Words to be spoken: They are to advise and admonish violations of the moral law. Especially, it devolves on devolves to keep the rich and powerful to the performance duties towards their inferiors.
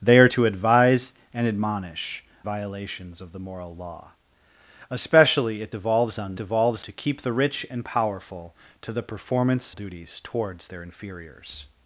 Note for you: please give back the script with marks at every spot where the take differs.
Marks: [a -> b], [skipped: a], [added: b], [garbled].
They are to advise and admonish violations of the moral law. Especially, it devolves on devolves to keep the rich and powerful to the performance duties towards their inferiors.